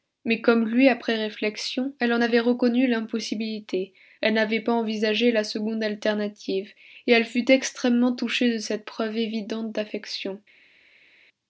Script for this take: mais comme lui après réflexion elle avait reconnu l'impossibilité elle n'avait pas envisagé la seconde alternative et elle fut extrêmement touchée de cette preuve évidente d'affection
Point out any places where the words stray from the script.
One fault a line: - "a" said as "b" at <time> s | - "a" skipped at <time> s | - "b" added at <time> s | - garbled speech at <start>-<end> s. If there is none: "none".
- "en" added at 2.1 s